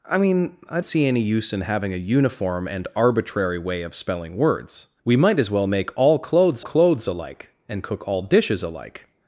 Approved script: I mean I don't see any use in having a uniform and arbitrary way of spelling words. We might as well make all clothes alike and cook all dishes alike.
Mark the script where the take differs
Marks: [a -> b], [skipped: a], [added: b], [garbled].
I mean I [skipped: don't] see any use in having a uniform and arbitrary way of spelling words. We might as well make all clothes [added: clothes] alike and cook all dishes alike.